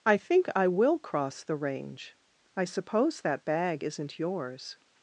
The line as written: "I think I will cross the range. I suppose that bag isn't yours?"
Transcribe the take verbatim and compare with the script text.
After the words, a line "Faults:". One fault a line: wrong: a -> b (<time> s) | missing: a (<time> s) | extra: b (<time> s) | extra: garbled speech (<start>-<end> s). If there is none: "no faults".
"I think I will cross the range. I suppose that bag isn't yours?"
Faults:
no faults